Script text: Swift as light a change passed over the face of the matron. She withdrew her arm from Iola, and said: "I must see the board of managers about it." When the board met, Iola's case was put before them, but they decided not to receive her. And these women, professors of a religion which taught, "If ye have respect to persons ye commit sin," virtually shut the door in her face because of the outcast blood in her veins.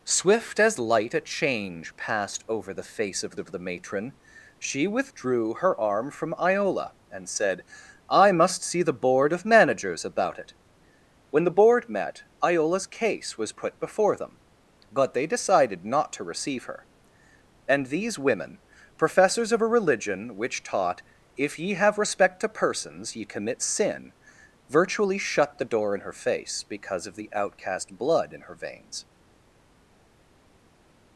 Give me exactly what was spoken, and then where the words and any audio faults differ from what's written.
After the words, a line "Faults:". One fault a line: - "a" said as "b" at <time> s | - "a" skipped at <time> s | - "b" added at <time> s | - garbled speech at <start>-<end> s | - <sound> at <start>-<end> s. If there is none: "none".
Swift as light a change passed over the face of of the matron. She withdrew her arm from Iola, and said: "I must see the board of managers about it." When the board met, Iola's case was put before them, but they decided not to receive her. And these women, professors of a religion which taught, "If ye have respect to persons ye commit sin," virtually shut the door in her face because of the outcast blood in her veins.
Faults:
- "of" added at 3.4 s